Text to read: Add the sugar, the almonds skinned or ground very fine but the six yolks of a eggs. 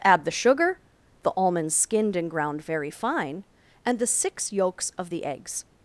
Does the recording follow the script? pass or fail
fail